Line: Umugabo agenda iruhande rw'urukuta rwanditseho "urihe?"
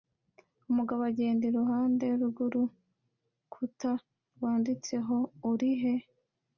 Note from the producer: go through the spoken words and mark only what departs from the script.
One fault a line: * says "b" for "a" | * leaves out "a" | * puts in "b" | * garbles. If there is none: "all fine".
all fine